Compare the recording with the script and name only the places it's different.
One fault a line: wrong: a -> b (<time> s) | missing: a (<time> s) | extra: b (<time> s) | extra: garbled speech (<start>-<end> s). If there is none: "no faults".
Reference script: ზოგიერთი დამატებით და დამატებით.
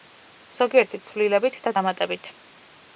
wrong: დამატებით -> ცვლილებით (1.1 s)